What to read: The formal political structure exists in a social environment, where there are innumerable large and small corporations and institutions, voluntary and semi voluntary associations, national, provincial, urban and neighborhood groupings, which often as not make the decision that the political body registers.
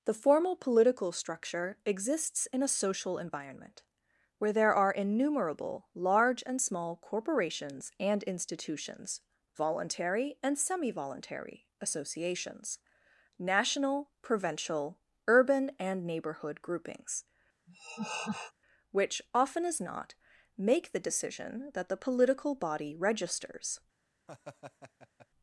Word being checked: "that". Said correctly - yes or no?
yes